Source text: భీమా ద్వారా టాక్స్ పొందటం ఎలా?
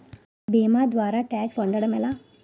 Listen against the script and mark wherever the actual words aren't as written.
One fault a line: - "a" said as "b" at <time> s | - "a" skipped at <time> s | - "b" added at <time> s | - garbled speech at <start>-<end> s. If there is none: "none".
none